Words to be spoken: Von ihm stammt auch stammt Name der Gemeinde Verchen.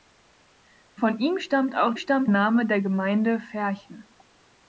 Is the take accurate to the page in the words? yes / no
yes